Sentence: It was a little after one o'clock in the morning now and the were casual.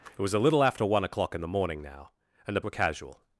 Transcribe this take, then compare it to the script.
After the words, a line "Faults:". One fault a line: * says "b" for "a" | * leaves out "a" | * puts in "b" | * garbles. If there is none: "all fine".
It was a little after one o'clock in the morning now and the were casual.
Faults:
all fine